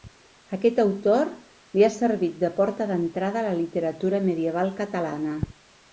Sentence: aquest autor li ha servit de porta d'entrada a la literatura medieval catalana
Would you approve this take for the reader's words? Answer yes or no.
yes